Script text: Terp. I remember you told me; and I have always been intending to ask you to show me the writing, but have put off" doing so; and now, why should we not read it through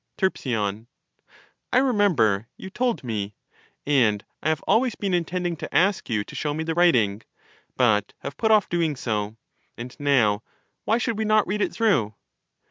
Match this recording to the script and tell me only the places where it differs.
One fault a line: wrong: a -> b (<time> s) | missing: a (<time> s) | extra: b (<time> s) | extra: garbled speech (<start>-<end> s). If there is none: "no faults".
no faults